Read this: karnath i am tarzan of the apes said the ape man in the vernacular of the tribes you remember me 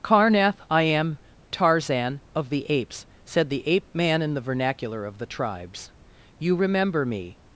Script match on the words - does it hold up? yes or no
yes